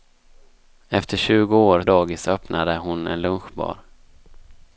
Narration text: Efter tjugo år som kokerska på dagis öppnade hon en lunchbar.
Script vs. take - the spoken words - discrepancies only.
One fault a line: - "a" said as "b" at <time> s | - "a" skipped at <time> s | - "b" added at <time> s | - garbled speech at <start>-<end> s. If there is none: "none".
- "som kokerska på" skipped at 1.8 s